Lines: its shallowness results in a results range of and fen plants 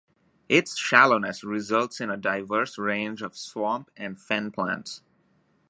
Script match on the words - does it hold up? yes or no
no